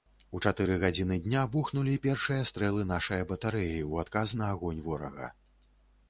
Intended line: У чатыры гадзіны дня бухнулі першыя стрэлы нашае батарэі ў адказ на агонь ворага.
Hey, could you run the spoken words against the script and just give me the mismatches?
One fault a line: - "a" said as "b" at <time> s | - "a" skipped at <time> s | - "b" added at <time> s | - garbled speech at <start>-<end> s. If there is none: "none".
none